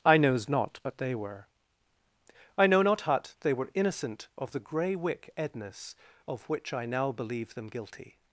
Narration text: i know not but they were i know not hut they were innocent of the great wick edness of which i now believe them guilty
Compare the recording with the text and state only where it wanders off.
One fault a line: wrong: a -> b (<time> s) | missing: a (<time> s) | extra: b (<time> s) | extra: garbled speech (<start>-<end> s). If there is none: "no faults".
wrong: know -> knows (0.2 s)
wrong: great -> grey (4.6 s)